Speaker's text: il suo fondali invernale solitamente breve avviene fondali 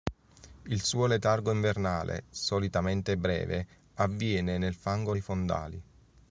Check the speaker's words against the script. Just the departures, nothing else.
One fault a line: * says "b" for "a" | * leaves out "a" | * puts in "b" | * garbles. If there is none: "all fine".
* says "letargo" for "fondali"
* puts in "nel fango dei"